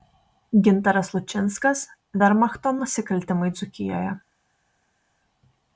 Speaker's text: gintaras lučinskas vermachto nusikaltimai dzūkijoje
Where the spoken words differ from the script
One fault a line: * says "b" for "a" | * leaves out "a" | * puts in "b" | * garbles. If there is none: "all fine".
all fine